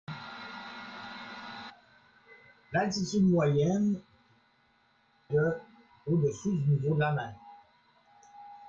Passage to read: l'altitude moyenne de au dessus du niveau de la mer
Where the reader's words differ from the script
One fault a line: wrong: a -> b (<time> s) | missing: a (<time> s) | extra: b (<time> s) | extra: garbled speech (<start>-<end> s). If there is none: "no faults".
no faults